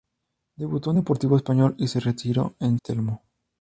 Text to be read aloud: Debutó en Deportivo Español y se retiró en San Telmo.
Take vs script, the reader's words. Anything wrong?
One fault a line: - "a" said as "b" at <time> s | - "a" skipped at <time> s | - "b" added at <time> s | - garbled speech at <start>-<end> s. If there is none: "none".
- "San" skipped at 2.8 s